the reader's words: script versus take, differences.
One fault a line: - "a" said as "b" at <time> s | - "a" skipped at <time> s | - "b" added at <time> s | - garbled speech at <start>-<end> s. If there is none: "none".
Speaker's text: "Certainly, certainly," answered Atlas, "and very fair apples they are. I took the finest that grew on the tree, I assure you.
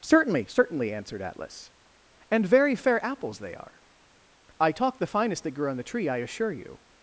- "took" said as "talk" at 4.7 s